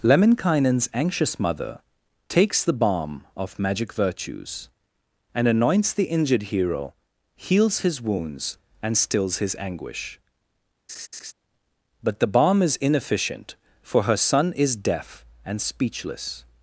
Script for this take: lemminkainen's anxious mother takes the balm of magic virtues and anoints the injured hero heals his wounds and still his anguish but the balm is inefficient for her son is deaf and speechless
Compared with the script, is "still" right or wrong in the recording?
wrong